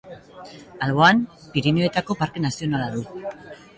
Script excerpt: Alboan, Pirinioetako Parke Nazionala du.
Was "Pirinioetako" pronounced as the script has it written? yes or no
yes